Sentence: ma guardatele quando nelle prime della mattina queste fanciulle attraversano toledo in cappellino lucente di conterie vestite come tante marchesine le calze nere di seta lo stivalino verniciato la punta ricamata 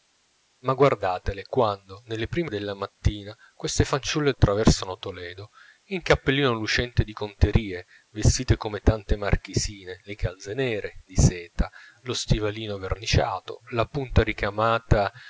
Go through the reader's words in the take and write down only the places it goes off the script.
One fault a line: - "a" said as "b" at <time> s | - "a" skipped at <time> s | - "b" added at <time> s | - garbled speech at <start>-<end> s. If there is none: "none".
none